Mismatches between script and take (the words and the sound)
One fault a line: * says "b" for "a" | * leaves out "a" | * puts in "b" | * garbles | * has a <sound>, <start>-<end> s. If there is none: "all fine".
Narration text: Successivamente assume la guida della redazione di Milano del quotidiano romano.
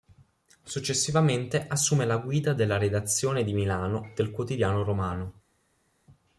all fine